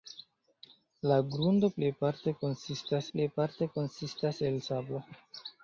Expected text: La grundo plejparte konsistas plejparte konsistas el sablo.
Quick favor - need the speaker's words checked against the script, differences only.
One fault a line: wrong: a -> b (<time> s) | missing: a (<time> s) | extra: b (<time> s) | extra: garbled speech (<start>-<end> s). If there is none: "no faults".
no faults